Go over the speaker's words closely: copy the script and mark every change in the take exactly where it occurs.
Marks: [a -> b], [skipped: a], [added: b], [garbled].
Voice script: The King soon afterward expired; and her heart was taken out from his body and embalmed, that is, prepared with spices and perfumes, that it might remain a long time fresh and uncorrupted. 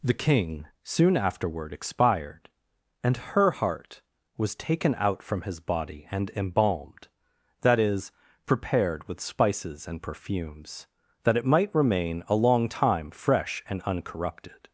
The King soon afterward expired; and her heart was taken out from his body and embalmed, that is, prepared with spices and perfumes, that it might remain a long time fresh and uncorrupted.